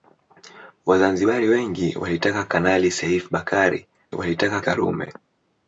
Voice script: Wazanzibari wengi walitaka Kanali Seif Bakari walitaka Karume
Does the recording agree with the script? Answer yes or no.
yes